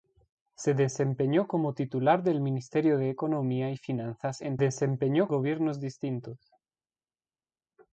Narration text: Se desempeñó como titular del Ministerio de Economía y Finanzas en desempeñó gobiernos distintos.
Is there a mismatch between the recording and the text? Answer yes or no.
no